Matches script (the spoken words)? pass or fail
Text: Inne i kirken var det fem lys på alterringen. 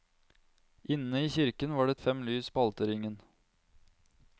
pass